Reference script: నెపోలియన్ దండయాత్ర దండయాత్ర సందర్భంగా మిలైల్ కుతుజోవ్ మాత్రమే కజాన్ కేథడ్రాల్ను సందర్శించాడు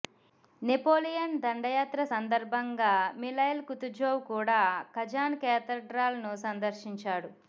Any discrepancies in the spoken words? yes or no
yes